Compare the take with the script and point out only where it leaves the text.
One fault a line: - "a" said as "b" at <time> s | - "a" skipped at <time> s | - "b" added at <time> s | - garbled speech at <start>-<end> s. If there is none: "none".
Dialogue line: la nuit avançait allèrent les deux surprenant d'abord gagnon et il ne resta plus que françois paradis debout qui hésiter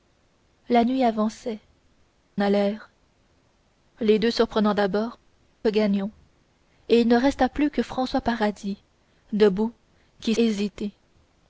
none